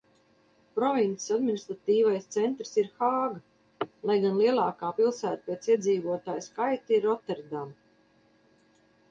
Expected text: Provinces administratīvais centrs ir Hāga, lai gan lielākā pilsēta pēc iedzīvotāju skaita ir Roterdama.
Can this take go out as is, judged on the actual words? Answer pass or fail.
pass